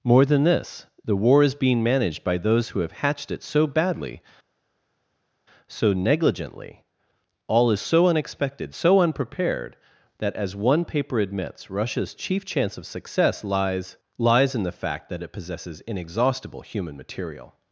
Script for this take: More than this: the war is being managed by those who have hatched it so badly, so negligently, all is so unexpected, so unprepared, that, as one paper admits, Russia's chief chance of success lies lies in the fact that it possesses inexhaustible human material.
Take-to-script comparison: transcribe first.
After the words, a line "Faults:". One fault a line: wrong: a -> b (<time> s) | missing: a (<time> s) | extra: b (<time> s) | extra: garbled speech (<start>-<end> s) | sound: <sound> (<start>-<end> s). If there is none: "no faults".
More than this: the war is being managed by those who have hatched it so badly, so negligently, all is so unexpected, so unprepared, that, as one paper admits, Russia's chief chance of success lies lies in the fact that it possesses inexhaustible human material.
Faults:
no faults